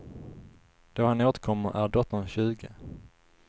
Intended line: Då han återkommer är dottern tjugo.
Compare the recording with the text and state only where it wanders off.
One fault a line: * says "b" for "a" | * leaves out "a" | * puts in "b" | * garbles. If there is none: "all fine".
all fine